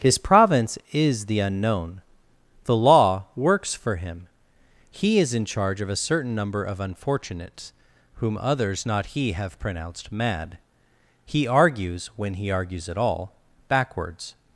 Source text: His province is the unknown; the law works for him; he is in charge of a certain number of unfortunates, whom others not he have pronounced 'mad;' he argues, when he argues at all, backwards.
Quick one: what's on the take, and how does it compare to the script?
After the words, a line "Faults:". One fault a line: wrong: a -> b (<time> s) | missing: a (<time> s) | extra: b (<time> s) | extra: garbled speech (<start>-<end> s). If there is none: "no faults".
His province is the unknown; the law works for him; he is in charge of a certain number of unfortunates, whom others not he have pronounced 'mad;' he argues, when he argues at all, backwards.
Faults:
no faults